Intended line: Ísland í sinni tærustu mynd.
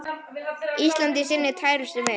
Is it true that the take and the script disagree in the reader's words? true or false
false